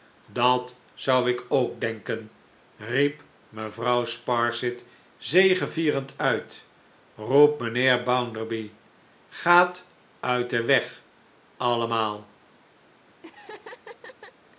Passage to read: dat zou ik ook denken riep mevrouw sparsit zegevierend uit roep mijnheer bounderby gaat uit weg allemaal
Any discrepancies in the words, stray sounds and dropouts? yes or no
yes